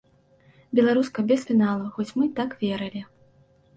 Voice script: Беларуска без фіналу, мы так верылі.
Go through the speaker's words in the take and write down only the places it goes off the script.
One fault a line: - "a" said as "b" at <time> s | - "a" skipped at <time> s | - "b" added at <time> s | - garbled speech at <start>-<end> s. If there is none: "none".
- "хоць" added at 1.9 s